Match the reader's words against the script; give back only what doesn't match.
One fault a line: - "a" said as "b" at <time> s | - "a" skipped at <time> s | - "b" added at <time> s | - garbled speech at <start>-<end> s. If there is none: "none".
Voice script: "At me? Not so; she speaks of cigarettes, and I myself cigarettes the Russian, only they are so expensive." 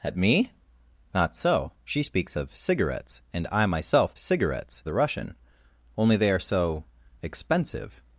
none